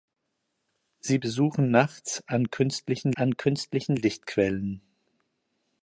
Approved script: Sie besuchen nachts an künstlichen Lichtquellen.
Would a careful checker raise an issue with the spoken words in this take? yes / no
yes